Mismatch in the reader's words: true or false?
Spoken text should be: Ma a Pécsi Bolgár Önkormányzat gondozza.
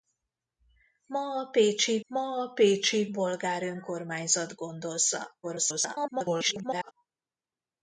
true